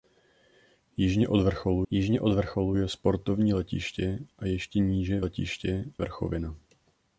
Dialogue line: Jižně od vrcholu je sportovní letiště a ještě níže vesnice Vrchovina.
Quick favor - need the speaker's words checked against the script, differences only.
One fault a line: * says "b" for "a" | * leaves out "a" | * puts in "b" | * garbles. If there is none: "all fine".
* puts in "jižně od vrcholu"
* says "letiště" for "vesnice"